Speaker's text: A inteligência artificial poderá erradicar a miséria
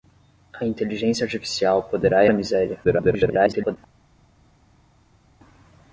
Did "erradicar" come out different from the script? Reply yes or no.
yes